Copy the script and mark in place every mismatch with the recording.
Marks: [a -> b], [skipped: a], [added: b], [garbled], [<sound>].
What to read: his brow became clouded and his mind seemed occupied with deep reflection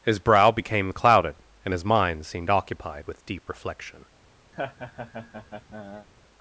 his brow became clouded and his mind seemed occupied with deep reflection [laugh]